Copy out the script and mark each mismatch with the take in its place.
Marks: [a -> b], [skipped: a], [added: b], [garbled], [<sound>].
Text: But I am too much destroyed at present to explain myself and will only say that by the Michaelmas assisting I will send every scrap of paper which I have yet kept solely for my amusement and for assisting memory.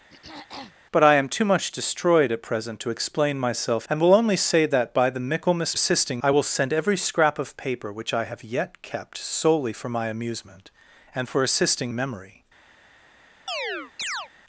[throat clearing] But I am too much destroyed at present to explain myself and will only say that by the Michaelmas assisting I will send every scrap of paper which I have yet kept solely for my amusement and for assisting memory. [chirp]